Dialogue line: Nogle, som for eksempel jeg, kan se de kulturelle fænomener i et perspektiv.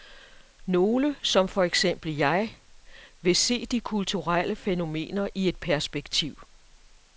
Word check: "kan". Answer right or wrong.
wrong